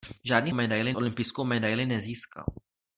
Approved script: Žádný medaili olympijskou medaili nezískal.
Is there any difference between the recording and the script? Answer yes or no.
no